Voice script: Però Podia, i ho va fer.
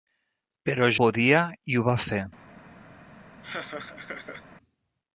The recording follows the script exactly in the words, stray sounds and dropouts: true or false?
false